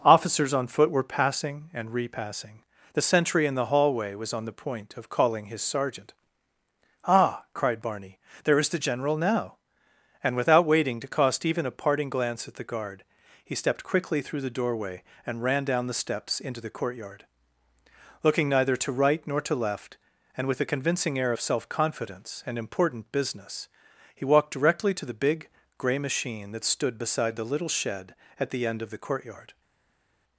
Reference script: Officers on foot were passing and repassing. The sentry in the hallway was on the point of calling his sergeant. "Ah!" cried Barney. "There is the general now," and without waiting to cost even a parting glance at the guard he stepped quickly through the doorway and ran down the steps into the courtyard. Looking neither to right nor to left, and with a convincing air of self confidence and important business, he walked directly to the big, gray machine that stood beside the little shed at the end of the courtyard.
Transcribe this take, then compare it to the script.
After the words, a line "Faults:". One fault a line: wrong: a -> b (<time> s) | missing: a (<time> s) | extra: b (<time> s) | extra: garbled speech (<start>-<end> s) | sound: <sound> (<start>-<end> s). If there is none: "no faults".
Officers on foot were passing and repassing. The sentry in the hallway was on the point of calling his sergeant. "Ah!" cried Barney. "There is the general now," and without waiting to cost even a parting glance at the guard he stepped quickly through the doorway and ran down the steps into the courtyard. Looking neither to right nor to left, and with a convincing air of self confidence and important business, he walked directly to the big, gray machine that stood beside the little shed at the end of the courtyard.
Faults:
no faults